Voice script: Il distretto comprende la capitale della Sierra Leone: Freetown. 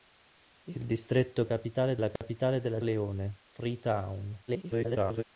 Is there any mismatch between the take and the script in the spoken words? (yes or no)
yes